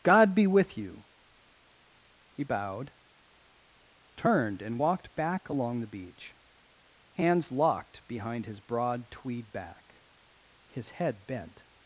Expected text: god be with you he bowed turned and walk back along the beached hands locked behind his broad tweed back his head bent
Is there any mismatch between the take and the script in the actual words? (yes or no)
yes